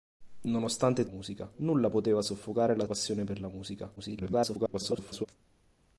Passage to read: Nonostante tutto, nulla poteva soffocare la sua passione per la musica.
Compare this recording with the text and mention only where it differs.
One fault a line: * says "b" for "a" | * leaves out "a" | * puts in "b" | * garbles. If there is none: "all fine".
* says "musica" for "tutto"
* leaves out "sua"
* garbles